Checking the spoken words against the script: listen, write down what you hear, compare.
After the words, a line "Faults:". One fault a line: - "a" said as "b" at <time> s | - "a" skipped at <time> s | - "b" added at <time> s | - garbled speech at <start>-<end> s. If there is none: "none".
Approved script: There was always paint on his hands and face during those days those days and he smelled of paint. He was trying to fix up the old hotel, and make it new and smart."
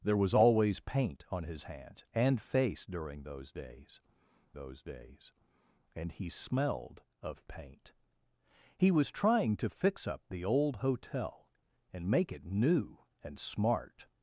There was always paint on his hands and face during those days those days and he smelled of paint. He was trying to fix up the old hotel, and make it new and smart."
Faults:
none